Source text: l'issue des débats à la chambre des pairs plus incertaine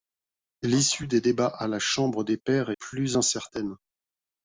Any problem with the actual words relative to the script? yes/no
no